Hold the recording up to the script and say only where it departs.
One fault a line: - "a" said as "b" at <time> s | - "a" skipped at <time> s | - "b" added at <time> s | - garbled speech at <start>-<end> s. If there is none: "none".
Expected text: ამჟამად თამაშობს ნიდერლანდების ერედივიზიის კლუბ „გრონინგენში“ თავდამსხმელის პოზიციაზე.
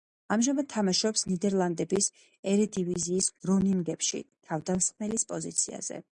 - "კლუბ" skipped at 3.3 s